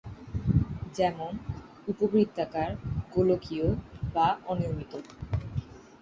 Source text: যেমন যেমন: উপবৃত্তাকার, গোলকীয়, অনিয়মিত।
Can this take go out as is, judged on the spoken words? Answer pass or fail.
fail